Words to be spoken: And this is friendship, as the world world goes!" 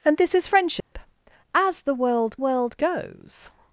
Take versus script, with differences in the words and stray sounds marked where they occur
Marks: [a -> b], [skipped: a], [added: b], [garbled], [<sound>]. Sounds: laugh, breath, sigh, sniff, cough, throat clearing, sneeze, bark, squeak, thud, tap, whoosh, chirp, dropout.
And this is friendship, [dropout] as the world world goes!"